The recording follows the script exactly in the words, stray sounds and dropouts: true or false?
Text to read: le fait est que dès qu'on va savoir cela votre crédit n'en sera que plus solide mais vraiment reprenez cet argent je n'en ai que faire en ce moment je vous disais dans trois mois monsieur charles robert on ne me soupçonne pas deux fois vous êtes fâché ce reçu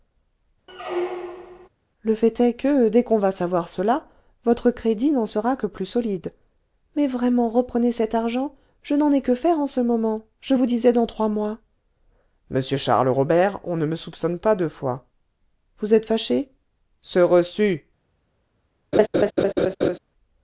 false